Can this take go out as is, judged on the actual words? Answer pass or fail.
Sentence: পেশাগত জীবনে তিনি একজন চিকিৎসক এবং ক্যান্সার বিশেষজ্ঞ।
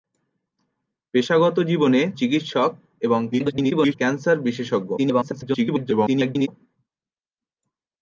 fail